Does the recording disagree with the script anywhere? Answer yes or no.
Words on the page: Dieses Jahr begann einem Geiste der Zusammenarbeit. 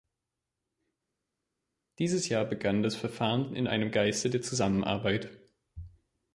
yes